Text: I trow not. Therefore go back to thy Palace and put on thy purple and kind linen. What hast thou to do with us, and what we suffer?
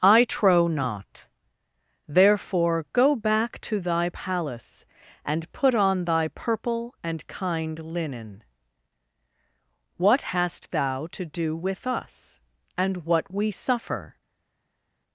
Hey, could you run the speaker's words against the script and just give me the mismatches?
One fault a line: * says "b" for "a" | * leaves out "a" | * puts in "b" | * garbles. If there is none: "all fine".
all fine